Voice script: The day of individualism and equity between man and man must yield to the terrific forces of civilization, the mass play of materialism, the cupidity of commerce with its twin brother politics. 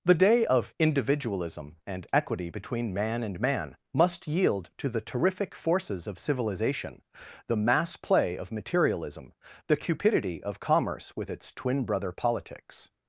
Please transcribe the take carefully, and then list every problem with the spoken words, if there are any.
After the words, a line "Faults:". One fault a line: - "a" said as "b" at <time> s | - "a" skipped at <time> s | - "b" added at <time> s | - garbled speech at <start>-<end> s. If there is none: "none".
The day of individualism and equity between man and man must yield to the terrific forces of civilization, the mass play of materialism, the cupidity of commerce with its twin brother politics.
Faults:
none